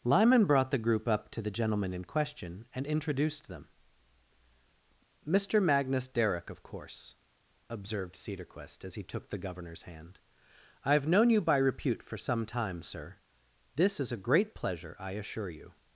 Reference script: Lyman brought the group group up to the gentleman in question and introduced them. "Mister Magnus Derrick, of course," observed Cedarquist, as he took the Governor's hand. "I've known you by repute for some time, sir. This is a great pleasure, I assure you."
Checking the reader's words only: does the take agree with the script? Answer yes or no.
no